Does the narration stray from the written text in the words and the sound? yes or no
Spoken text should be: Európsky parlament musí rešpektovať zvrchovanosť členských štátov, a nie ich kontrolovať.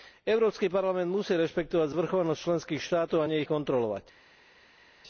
no